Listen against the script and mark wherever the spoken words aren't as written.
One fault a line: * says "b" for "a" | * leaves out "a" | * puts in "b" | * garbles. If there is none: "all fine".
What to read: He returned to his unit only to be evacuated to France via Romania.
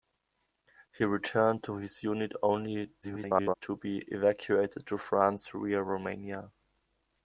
* garbles